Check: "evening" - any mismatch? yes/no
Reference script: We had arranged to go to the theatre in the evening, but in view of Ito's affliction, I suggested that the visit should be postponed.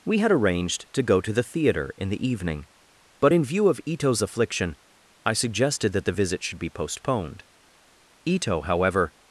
no